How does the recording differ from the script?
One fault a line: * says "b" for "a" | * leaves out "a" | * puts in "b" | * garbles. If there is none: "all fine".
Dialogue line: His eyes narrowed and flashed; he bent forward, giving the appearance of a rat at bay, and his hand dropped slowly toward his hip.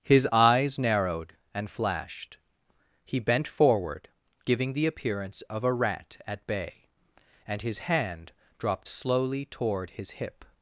all fine